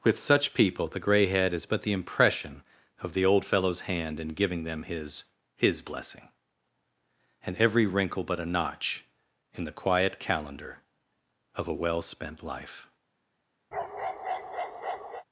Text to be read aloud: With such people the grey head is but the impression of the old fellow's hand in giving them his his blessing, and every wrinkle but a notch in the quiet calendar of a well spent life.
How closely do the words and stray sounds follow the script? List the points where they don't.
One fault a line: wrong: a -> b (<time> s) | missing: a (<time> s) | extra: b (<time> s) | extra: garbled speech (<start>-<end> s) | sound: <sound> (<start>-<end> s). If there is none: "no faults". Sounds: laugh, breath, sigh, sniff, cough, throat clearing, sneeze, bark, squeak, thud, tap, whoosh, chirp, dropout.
sound: bark (13.7-15.2 s)